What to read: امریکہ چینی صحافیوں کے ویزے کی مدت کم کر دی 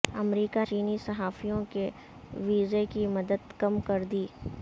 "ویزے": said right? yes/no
yes